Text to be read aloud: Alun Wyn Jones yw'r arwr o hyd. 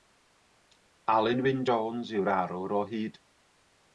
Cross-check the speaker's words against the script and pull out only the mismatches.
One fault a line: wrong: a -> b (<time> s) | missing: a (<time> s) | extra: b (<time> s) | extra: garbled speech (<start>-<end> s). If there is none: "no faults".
no faults